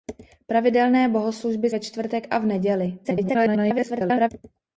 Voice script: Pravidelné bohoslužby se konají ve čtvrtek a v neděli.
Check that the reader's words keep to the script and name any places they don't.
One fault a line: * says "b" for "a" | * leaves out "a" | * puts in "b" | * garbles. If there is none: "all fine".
* leaves out "se konají"
* garbles